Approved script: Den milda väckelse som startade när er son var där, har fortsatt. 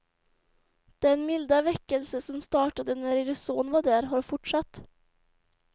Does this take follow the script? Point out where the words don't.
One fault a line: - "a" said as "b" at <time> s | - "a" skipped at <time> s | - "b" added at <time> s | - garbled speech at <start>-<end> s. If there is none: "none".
none